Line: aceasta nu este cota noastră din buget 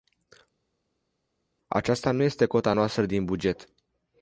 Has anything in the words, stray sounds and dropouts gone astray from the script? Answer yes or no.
no